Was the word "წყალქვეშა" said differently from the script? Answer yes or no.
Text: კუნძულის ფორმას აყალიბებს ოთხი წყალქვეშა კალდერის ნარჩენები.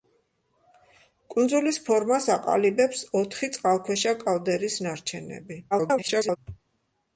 no